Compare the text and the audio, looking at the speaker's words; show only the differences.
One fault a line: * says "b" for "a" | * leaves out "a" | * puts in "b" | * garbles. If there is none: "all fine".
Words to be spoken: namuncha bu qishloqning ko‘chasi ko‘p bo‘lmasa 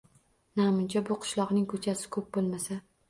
all fine